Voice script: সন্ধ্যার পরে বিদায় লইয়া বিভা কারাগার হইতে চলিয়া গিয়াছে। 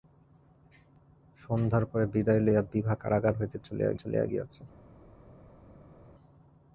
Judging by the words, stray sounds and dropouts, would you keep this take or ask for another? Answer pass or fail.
fail